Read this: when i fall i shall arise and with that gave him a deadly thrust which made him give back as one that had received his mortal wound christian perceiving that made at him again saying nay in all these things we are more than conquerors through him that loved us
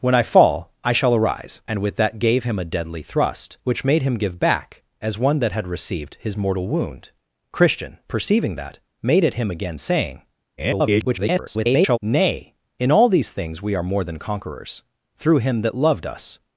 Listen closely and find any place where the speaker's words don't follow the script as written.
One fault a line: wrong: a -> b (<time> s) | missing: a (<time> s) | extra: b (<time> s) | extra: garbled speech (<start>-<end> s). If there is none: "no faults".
extra: garbled speech (10.6-12.0 s)